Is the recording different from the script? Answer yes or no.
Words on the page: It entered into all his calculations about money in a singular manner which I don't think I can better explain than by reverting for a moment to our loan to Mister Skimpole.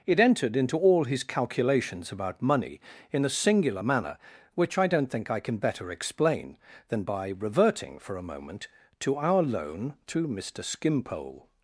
no